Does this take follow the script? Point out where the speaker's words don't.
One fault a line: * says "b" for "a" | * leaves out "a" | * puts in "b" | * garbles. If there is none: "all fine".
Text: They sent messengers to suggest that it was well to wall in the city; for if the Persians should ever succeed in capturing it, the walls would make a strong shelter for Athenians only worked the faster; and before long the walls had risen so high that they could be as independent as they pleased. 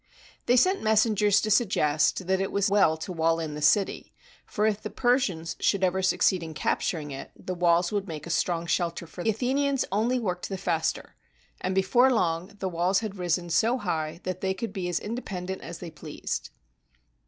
all fine